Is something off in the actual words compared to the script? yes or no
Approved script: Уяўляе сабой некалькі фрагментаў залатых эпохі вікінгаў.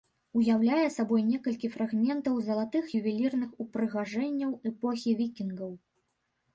yes